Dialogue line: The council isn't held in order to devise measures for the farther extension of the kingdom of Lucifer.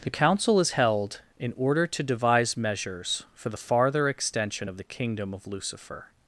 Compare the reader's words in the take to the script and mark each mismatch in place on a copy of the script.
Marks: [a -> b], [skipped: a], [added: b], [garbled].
The council [isn't -> is] held in order to devise measures for the farther extension of the kingdom of Lucifer.